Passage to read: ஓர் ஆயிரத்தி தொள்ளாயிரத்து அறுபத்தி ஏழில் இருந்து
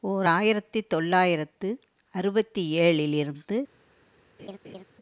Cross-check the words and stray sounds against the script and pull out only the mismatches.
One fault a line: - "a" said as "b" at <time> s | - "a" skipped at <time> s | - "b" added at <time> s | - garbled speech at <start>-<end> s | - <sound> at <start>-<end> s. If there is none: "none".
- laugh at 4.4-4.8 s